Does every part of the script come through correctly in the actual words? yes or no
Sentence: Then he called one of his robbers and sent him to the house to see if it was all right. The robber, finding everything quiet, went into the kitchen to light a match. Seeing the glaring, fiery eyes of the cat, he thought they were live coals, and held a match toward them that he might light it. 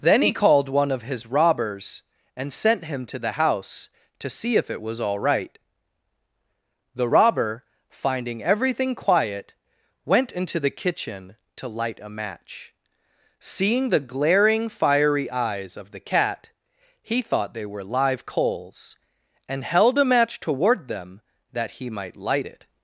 yes